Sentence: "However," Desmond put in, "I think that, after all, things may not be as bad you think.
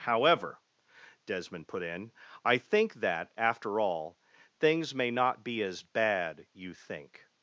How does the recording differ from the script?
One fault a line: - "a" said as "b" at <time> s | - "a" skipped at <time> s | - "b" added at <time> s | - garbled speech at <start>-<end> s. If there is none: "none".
none